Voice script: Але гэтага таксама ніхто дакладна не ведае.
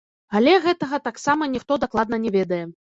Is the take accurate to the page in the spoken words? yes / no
yes